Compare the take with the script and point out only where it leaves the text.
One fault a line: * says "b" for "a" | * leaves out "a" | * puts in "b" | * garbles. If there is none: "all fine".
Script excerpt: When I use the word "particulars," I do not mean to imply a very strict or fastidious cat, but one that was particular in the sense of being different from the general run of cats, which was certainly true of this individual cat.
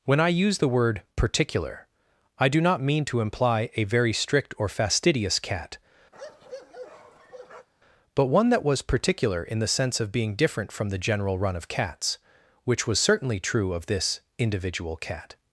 * says "particular" for "particulars"